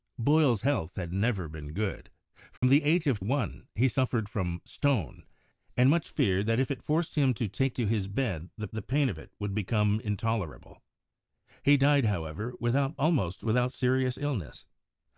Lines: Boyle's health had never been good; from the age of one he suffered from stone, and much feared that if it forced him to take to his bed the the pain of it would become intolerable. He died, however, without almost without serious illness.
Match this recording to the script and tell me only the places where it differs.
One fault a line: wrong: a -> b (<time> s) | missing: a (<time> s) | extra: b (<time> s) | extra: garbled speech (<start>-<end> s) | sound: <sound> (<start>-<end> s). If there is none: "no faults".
sound: dropout (2.6-2.6 s)